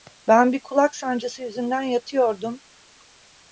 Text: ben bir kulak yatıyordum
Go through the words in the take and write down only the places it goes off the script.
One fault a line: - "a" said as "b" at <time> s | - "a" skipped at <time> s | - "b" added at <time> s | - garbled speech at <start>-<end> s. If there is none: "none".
- "sancısı yüzünden" added at 0.9 s